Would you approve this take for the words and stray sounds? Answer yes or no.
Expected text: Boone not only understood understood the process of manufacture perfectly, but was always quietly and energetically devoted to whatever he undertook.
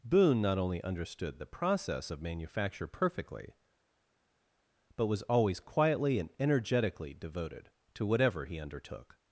no